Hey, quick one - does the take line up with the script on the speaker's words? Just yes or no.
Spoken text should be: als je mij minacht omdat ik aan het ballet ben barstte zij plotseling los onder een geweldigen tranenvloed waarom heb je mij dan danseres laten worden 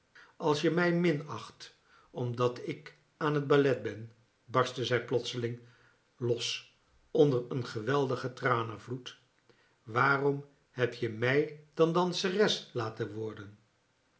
yes